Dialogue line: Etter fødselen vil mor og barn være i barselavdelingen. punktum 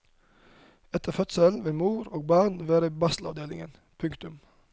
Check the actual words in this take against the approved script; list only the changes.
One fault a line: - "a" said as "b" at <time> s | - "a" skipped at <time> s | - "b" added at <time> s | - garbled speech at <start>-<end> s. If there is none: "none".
none